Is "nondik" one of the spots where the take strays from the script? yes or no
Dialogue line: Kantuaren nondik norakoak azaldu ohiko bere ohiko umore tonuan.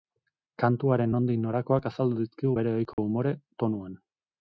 no